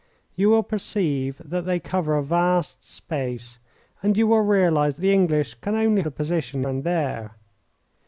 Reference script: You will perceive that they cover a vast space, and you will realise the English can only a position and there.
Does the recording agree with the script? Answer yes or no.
yes